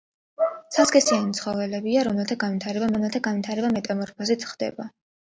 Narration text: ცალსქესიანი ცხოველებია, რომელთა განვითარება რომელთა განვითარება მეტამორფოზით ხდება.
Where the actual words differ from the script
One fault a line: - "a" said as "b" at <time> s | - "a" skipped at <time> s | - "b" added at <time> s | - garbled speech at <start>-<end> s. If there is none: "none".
none